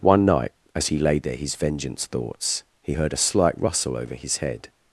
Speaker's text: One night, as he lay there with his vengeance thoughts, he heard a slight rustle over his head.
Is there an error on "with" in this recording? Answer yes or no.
yes